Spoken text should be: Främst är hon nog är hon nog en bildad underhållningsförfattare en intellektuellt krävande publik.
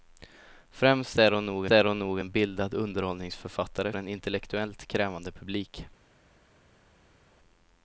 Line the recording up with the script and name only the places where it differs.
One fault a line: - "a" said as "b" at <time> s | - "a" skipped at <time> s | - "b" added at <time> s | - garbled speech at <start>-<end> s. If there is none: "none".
none